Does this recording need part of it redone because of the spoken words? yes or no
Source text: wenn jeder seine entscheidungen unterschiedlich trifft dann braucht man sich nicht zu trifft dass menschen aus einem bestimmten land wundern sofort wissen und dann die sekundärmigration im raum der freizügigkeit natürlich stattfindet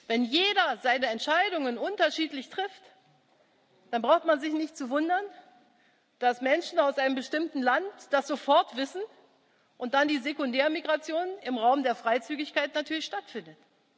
yes